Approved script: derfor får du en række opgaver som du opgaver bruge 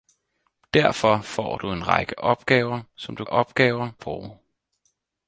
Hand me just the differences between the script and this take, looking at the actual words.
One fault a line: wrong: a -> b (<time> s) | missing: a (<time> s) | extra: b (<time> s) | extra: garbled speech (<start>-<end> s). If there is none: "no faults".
no faults